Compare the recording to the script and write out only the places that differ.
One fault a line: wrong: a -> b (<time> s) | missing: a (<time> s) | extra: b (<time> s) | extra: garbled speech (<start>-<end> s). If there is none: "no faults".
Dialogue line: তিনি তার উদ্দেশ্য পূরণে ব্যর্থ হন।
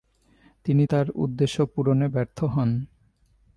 no faults